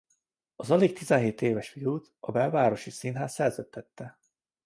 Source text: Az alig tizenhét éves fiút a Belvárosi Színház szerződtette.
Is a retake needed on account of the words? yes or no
no